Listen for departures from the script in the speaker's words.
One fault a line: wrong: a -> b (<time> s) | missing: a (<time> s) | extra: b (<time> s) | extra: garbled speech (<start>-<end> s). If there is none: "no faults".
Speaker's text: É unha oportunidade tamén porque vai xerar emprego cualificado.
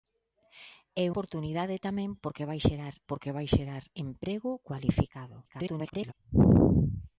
missing: unha (1.1 s)
extra: porque vai xerar (3.1 s)
extra: garbled speech (5.4-6.1 s)